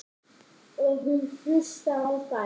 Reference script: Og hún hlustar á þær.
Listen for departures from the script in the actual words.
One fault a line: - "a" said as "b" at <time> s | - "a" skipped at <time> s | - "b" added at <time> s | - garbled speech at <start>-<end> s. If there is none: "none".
none